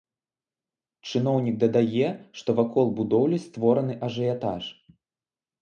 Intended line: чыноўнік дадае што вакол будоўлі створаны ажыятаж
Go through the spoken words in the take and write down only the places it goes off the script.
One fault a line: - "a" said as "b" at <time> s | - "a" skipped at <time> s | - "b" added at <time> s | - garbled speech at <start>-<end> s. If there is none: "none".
none